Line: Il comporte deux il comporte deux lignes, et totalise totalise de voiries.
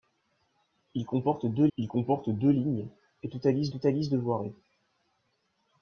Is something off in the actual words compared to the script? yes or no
no